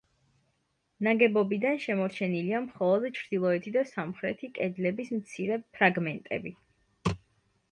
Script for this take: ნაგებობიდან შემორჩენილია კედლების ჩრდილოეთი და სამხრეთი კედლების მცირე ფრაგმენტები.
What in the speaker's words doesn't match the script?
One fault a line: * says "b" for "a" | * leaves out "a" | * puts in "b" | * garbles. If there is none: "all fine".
* says "მხოლოდ" for "კედლების"